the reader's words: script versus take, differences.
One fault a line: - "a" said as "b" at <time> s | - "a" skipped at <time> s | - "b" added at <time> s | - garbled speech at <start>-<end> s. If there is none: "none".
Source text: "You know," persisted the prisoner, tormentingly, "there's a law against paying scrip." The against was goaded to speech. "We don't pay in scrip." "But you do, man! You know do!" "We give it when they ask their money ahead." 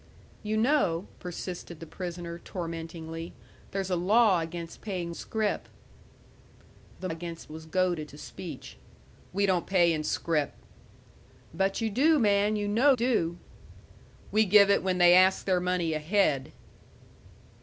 none